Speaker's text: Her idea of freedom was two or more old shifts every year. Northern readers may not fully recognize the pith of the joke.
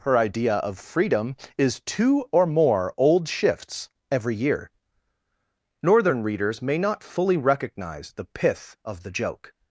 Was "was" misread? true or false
true